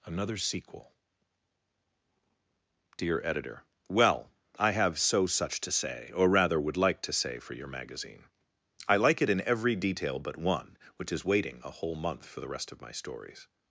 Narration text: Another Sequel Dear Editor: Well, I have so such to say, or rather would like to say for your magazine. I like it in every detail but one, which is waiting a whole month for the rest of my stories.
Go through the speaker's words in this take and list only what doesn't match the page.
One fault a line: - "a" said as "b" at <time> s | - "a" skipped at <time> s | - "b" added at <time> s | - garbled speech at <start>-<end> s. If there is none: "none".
none